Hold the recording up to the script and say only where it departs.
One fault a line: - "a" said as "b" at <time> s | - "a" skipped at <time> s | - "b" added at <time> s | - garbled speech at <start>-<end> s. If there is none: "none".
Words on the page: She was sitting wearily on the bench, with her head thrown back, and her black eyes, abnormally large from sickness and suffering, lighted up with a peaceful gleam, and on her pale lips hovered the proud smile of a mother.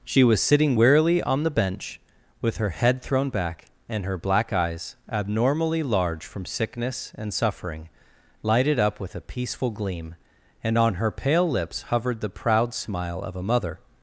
none